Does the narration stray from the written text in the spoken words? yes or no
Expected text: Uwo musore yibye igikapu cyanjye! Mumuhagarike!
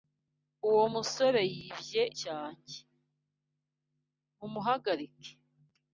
yes